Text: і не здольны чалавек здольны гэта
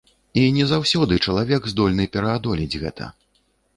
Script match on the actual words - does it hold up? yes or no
no